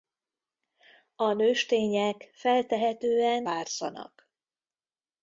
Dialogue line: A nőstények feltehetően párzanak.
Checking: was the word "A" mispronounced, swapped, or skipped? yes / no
no